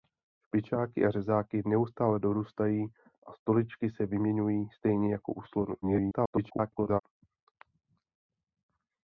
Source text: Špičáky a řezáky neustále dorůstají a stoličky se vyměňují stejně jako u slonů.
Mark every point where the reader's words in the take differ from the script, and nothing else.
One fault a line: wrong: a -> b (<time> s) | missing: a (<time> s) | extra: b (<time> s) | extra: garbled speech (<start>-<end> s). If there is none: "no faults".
extra: garbled speech (5.8-7.0 s)